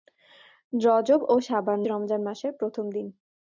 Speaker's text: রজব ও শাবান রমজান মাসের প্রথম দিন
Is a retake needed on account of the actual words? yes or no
no